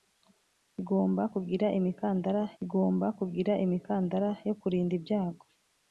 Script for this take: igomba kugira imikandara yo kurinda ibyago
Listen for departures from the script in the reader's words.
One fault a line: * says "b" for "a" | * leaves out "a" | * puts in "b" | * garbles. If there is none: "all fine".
* puts in "igomba kugira imikandara"